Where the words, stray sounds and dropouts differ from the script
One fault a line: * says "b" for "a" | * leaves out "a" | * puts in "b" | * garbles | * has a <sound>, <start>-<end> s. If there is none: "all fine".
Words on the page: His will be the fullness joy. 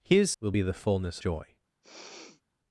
* has a sniff, 1.8-2.4 s